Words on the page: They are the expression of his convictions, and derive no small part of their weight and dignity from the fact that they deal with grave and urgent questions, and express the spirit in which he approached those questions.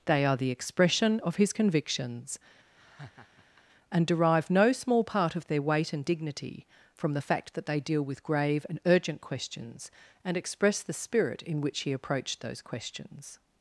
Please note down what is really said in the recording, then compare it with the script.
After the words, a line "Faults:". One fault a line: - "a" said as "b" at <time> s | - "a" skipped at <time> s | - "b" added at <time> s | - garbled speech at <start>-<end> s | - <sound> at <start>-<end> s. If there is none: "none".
They are the expression of his convictions, and derive no small part of their weight and dignity from the fact that they deal with grave and urgent questions, and express the spirit in which he approached those questions.
Faults:
- laugh at 2.7-3.7 s